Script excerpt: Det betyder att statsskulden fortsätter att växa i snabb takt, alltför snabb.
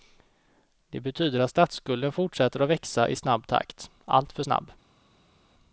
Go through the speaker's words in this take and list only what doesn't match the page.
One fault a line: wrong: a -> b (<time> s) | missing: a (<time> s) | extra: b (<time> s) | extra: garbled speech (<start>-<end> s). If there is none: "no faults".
no faults